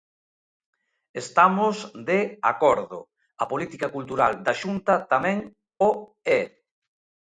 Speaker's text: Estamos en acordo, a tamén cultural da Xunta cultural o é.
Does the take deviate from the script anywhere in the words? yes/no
yes